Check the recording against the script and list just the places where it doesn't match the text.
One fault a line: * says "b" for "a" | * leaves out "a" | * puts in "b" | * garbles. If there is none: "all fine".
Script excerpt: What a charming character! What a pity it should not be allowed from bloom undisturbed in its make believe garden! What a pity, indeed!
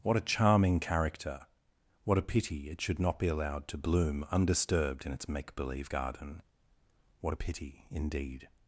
* says "to" for "from"